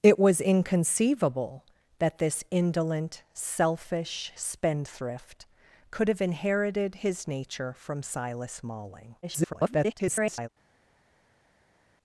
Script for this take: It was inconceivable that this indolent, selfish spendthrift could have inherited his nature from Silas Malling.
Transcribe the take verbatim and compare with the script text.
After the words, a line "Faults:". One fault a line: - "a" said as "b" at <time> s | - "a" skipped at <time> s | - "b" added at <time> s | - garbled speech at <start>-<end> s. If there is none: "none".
It was inconceivable that this indolent, selfish spendthrift could have inherited his nature from Silas Malling. [garbled]
Faults:
- garbled speech at 9.2-10.5 s